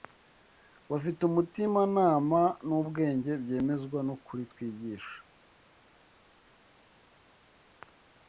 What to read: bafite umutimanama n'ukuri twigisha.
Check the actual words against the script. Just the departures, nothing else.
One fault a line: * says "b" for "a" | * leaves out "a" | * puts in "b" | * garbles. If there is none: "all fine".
* puts in "n'ubwenge byemezwa"